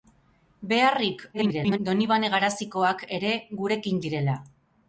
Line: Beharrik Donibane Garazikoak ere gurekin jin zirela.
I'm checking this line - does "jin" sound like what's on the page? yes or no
no